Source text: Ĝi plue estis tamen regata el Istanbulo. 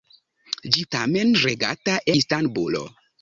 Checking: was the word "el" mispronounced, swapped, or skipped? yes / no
yes